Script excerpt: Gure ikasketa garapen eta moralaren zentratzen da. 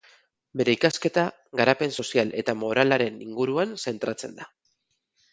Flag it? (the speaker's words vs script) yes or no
yes